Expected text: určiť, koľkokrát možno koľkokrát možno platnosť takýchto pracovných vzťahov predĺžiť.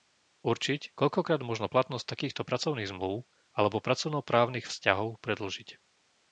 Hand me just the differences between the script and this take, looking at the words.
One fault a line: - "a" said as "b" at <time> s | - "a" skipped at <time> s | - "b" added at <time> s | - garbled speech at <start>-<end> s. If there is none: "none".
- "koľkokrát možno" skipped at 1.7 s
- "zmlúv alebo pracovnoprávnych" added at 2.9 s